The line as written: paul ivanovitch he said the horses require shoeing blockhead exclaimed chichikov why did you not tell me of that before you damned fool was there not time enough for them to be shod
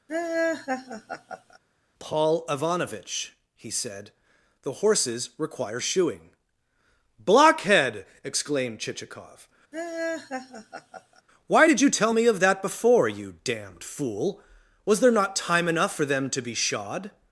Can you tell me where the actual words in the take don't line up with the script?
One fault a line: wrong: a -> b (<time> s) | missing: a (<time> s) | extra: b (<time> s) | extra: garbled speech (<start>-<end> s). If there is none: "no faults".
missing: not (11.9 s)